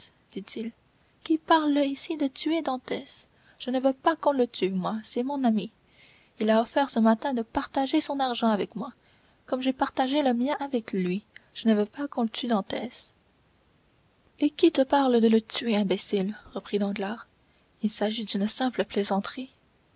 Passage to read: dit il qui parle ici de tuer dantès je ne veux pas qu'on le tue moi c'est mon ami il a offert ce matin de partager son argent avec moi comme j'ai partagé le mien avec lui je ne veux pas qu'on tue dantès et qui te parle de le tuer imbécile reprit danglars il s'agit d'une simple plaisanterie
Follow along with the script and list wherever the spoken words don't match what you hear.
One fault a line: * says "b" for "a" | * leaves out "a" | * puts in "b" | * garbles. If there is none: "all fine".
all fine